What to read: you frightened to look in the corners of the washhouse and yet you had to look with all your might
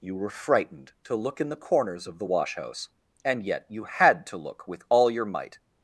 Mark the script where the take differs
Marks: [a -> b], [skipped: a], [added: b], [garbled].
you [added: were] frightened to look in the corners of the washhouse and yet you had to look with all your might